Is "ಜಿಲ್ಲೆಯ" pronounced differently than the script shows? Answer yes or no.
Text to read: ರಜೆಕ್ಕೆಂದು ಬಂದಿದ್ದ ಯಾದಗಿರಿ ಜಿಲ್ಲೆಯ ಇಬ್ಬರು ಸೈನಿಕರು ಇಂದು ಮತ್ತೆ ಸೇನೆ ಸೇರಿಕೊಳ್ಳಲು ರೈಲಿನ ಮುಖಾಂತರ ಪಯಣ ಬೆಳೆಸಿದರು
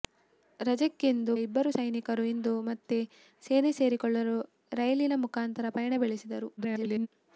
yes